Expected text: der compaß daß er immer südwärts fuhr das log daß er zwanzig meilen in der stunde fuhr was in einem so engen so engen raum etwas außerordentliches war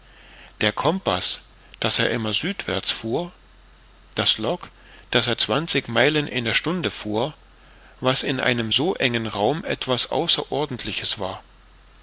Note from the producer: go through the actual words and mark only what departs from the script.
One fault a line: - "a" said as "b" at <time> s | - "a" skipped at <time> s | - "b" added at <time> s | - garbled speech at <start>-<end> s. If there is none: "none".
- "so engen" skipped at 9.3 s